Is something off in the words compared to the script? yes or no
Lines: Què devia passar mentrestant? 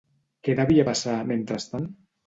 no